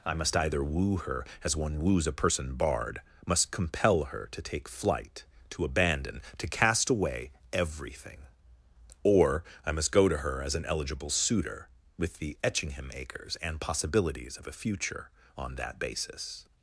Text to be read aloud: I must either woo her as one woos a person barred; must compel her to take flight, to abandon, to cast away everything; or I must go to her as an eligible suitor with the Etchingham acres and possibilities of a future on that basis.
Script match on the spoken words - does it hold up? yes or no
yes